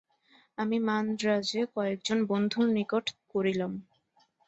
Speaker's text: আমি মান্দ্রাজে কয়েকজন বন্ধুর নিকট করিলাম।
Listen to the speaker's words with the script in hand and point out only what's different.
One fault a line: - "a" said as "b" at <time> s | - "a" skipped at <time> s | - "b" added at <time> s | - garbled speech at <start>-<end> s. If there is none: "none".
none